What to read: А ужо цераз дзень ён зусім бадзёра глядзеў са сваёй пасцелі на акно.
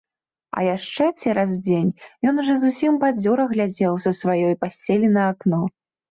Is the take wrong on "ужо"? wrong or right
wrong